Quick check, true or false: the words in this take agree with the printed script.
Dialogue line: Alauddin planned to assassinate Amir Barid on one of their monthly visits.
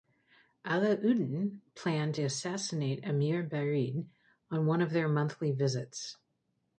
false